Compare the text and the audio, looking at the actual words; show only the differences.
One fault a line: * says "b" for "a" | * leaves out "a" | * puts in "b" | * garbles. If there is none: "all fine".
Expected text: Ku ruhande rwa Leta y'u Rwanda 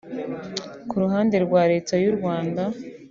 all fine